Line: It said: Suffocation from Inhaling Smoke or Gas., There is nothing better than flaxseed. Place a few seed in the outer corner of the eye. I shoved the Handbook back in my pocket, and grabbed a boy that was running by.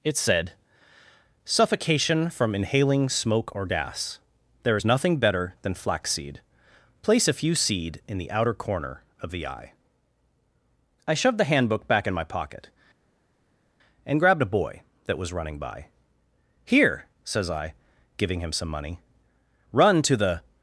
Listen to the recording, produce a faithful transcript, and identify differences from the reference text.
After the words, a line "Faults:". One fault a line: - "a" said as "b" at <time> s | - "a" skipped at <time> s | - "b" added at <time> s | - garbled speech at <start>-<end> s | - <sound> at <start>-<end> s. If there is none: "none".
It said: Suffocation from Inhaling Smoke or Gas., There is nothing better than flaxseed. Place a few seed in the outer corner of the eye. I shoved the Handbook back in my pocket, and grabbed a boy that was running by. "Here," says I, giving him some money, "run to the
Faults:
- "Here says I giving him some money run to the" added at 16.6 s